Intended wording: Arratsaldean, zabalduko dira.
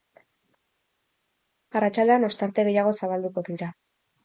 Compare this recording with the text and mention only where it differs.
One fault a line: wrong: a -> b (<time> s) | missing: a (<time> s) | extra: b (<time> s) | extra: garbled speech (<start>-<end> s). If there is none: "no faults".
extra: ostarte gehiago (2.3 s)